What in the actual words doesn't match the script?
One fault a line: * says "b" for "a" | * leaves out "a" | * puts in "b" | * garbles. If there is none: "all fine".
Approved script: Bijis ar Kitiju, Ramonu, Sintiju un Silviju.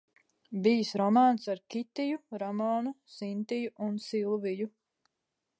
* puts in "romāns"